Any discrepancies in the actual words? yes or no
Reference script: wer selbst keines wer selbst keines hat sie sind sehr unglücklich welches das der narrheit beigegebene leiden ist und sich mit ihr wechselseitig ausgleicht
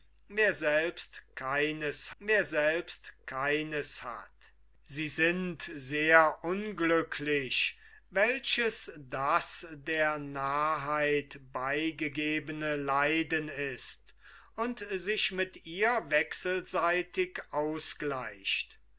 no